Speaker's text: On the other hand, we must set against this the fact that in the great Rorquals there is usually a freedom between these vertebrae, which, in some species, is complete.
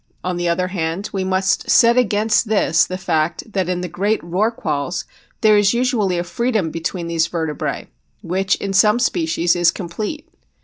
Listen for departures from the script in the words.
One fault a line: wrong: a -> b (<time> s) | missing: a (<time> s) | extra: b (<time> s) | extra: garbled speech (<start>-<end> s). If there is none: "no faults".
no faults